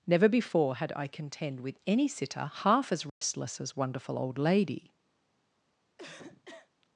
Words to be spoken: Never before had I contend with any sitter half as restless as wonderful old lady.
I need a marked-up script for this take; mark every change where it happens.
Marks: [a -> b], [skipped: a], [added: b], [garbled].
Never before had I contend with any sitter half as restless as wonderful old lady.